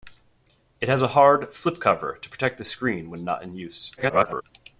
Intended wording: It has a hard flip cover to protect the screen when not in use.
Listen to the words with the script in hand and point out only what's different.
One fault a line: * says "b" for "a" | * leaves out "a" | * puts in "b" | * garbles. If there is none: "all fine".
* garbles